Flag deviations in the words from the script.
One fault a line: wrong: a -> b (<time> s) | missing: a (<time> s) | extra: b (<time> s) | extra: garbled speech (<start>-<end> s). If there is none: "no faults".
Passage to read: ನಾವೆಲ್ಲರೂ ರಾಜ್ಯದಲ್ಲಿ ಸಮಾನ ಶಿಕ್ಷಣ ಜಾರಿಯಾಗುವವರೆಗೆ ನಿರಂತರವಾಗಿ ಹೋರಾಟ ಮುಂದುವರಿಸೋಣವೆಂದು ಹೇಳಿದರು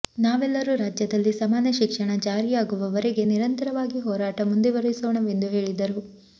no faults